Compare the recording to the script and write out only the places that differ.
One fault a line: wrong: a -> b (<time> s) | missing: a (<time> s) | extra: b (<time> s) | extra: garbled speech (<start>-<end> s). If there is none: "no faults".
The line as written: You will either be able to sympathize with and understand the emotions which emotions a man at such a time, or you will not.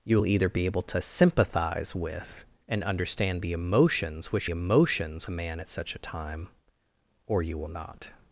no faults